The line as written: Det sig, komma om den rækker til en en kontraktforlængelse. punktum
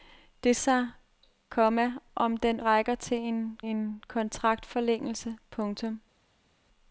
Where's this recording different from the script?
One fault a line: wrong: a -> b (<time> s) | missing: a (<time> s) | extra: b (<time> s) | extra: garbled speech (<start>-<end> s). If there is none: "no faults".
no faults